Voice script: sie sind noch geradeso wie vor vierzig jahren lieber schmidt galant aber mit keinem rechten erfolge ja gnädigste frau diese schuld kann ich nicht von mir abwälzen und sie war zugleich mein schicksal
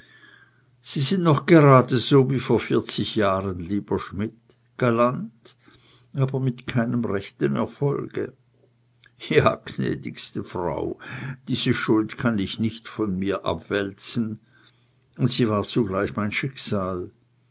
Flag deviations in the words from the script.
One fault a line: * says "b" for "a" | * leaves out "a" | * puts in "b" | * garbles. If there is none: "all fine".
all fine